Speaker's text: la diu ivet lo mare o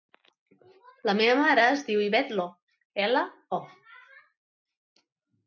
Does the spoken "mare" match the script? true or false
false